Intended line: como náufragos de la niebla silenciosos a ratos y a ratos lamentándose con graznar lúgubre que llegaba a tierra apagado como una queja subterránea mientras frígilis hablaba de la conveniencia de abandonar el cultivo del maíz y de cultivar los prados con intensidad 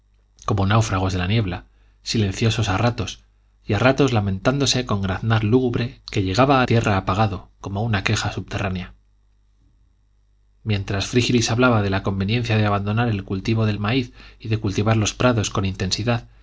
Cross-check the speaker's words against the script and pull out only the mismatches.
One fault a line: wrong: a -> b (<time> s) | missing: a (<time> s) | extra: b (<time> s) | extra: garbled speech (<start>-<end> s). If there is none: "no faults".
no faults